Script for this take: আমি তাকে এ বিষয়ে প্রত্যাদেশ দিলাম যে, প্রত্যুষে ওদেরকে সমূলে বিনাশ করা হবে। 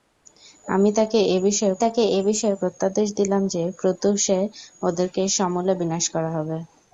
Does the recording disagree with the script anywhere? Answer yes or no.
yes